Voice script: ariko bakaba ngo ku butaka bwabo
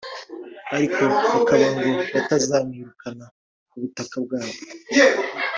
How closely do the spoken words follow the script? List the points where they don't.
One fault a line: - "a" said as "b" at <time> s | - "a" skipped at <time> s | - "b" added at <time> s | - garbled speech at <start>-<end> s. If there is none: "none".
- "batazamwirukana" added at 2.1 s